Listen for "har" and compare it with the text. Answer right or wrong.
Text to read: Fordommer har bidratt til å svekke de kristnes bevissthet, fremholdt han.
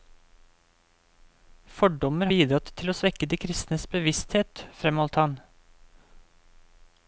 wrong